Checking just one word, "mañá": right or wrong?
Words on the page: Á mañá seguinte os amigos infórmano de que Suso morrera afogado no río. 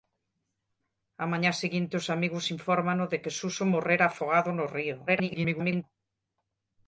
right